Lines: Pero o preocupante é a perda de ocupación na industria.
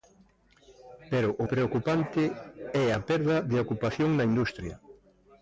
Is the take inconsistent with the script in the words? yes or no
no